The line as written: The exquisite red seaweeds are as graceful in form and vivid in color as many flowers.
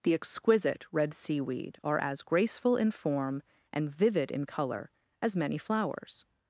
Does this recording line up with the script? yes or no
no